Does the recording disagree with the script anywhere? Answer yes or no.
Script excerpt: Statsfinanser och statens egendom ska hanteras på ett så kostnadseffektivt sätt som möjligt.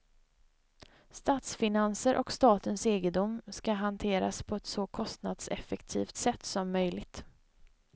no